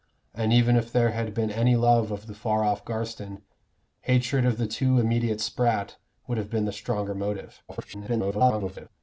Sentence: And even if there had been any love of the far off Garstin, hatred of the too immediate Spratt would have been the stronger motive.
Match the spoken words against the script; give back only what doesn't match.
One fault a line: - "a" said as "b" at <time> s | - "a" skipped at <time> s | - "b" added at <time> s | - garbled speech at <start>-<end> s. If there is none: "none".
- garbled speech at 7.7-8.9 s